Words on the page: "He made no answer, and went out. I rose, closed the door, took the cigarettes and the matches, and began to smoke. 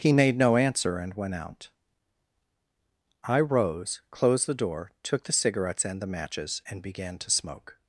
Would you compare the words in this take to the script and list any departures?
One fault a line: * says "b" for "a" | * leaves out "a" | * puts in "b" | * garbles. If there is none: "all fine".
all fine